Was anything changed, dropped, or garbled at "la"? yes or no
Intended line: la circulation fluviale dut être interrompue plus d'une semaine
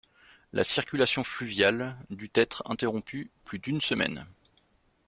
no